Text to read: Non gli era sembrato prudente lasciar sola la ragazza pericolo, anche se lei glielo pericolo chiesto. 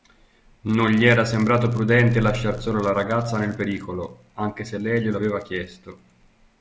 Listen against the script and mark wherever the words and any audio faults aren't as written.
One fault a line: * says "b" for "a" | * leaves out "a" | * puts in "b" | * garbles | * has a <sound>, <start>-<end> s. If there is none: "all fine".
* puts in "nel"
* says "aveva" for "pericolo"